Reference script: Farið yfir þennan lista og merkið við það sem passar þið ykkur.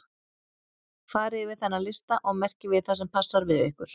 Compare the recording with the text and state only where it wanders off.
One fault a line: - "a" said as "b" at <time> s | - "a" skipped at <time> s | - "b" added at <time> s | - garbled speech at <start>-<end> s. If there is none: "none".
- "þið" said as "við" at 3.5 s